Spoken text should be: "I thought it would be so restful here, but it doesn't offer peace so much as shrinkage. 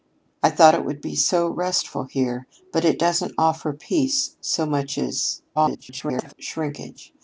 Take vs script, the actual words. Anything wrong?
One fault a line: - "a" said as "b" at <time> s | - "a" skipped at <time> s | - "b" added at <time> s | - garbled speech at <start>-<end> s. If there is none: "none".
- garbled speech at 5.5-6.3 s